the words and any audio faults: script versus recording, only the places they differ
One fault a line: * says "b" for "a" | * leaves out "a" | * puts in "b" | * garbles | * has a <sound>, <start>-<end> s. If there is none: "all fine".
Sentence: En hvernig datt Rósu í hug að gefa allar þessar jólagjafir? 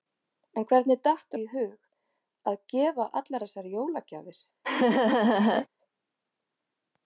* leaves out "Rósu"
* has a laugh, 4.6-5.7 s